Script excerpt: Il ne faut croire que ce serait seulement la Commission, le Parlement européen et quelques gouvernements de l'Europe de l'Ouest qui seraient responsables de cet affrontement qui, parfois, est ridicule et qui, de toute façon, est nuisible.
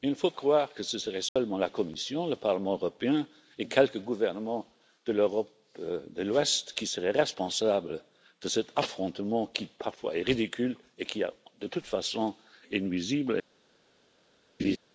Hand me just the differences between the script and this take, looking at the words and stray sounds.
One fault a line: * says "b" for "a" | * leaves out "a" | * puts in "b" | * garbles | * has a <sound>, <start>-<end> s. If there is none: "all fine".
* has a dropout, 1.3-1.4 s
* has a laugh, 14.6-14.8 s